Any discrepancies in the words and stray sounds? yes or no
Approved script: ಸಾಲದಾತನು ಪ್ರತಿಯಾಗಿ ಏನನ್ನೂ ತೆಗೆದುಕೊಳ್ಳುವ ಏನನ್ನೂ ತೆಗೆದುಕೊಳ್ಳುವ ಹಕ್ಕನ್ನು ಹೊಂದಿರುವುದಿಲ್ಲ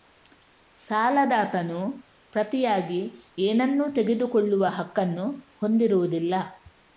yes